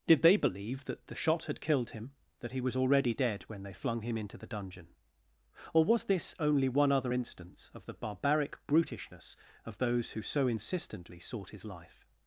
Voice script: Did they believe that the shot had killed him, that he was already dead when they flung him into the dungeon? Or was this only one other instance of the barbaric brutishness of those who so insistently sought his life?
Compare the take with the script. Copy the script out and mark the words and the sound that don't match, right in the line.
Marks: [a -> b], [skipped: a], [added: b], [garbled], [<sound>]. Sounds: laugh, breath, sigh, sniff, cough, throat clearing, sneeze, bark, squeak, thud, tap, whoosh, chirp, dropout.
Did they believe that the shot had killed him, that he was already dead when they flung him into the dungeon? Or was this only one other instance of the barbaric brutishness of those who so insistently sought his life?